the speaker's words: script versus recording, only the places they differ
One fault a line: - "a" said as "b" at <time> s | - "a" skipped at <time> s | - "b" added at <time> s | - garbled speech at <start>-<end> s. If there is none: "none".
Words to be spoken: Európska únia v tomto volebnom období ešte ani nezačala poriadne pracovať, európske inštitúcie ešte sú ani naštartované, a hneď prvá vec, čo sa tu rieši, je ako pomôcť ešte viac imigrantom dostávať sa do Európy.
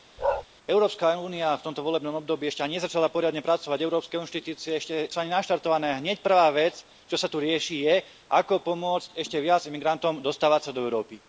none